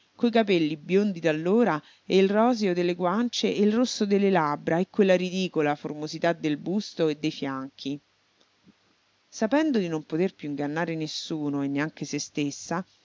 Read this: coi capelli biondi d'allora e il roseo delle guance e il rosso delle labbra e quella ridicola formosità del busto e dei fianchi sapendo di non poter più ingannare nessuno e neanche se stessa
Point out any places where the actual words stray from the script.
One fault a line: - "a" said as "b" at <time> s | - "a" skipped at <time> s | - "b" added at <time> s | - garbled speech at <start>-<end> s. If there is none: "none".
none